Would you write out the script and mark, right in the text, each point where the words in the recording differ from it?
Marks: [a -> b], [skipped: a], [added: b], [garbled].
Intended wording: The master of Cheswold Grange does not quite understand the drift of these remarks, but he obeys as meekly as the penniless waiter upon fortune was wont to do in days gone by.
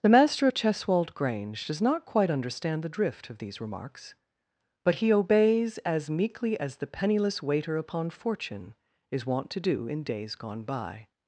The master of Cheswold Grange does not quite understand the drift of these remarks, but he obeys as meekly as the penniless waiter upon fortune [was -> is] wont to do in days gone by.